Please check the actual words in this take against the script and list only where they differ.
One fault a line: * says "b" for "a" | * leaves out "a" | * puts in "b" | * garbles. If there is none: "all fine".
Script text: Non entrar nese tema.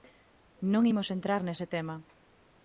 * puts in "imos"